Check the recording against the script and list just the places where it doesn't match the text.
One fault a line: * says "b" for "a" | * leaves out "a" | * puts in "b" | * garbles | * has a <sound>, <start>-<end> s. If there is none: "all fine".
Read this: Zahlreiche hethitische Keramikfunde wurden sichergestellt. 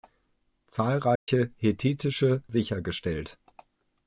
* has a dropout, 1.2-1.3 s
* leaves out "Keramikfunde wurden"